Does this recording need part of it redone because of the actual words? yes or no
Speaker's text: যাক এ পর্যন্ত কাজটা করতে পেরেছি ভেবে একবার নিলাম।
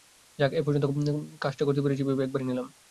no